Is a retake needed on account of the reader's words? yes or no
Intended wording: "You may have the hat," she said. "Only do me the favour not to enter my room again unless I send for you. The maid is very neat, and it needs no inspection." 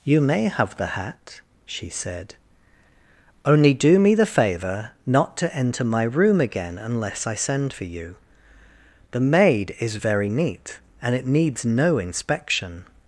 no